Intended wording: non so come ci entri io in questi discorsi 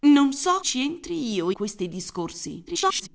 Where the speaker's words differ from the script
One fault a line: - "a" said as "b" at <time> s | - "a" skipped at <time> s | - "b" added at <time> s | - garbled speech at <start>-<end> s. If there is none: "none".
- "come" skipped at 0.6 s
- "in" skipped at 1.5 s
- garbled speech at 2.7-3.1 s